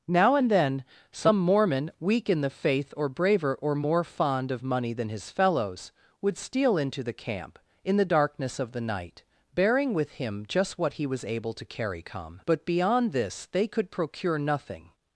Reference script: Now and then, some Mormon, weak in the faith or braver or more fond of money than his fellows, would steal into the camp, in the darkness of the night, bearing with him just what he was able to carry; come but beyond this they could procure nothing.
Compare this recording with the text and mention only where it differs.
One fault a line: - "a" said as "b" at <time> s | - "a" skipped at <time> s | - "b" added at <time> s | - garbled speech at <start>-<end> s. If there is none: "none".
none